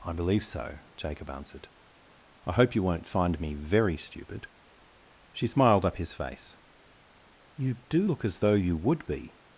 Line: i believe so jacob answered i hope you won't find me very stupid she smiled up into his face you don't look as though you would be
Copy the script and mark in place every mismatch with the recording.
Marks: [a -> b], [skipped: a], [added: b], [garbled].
i believe so jacob answered i hope you won't find me very stupid she smiled up [skipped: into] his face you [don't -> do] look as though you would be